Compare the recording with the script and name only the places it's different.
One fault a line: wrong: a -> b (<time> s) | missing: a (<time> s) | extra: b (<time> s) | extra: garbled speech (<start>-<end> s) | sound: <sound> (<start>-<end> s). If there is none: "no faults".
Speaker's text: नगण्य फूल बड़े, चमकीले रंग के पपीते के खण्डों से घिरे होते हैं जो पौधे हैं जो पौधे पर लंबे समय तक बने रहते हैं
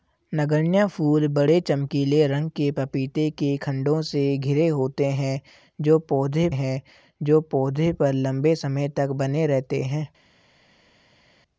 no faults